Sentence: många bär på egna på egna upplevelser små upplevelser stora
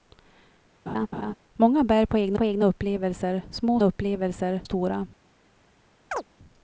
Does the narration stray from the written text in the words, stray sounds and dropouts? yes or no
yes